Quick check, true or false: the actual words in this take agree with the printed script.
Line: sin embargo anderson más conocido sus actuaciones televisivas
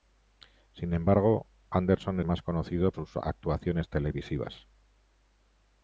true